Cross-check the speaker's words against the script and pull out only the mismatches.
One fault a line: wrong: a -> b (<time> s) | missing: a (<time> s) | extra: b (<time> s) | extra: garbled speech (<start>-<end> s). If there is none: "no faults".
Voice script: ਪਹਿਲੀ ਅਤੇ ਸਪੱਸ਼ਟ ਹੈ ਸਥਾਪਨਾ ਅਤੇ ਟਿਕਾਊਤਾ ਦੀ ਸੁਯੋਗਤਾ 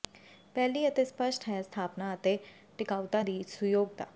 no faults